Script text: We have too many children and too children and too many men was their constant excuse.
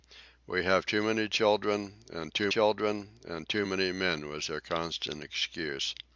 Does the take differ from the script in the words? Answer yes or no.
no